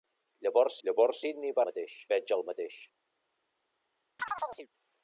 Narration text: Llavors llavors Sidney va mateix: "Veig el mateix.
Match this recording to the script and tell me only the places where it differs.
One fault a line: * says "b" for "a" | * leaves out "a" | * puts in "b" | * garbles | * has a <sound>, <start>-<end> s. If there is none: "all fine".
* has a chirp, 4.2-4.7 s